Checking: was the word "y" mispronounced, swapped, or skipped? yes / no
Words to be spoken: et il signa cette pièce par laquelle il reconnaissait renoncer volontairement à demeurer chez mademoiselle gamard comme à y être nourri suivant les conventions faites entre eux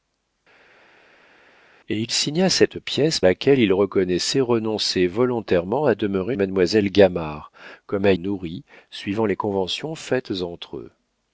yes